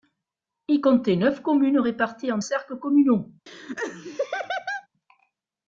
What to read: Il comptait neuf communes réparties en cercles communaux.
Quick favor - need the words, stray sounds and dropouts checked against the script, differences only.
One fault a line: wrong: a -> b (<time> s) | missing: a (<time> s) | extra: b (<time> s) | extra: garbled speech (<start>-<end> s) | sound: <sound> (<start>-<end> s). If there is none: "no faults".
sound: laugh (3.5-4.9 s)